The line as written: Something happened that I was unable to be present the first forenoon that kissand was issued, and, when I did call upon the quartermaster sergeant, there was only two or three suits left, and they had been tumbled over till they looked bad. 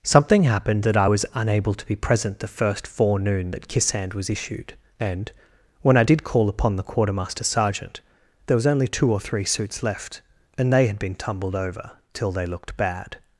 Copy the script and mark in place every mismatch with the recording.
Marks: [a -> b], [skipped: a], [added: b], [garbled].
Something happened that I was unable to be present the first forenoon that kissand was issued, and, when I did call upon the quartermaster sergeant, there was only two or three suits left, and they had been tumbled over till they looked bad.